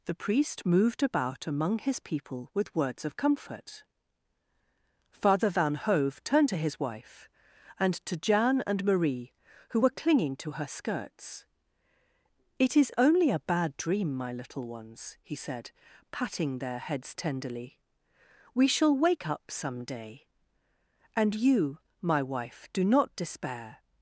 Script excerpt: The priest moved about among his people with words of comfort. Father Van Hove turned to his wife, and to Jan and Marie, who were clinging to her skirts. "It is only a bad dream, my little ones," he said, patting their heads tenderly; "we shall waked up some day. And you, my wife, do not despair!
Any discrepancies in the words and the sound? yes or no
yes